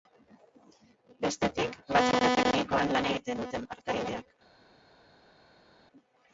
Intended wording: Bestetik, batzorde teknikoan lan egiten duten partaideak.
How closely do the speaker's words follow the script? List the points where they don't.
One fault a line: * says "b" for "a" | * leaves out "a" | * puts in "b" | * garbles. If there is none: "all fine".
all fine